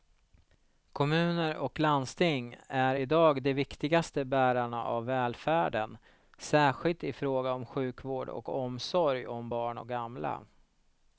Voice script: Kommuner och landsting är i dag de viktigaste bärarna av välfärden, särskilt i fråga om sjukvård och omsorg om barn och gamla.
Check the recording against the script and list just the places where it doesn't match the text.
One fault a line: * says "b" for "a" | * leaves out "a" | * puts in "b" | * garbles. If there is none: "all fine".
all fine